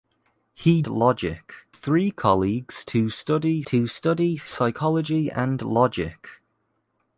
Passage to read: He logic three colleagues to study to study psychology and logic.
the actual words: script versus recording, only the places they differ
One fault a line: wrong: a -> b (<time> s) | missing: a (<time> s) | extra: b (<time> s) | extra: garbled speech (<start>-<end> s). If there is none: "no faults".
no faults